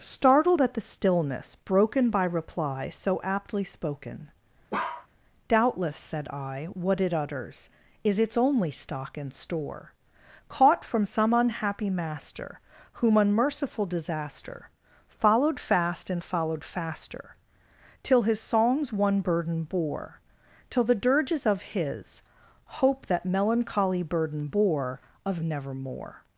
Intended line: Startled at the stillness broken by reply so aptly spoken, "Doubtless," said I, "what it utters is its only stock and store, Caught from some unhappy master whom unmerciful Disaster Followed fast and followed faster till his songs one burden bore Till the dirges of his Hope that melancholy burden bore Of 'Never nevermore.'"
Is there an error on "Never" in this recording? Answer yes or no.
yes